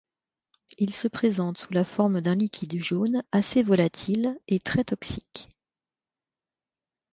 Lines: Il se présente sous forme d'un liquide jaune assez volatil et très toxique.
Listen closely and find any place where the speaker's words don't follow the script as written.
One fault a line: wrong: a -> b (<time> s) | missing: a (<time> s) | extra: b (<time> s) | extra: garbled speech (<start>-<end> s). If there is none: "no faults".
extra: la (1.7 s)